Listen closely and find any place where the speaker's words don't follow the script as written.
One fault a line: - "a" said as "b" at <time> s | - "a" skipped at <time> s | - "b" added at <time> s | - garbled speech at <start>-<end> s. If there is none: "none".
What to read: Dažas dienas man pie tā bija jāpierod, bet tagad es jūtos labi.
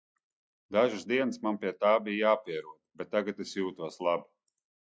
none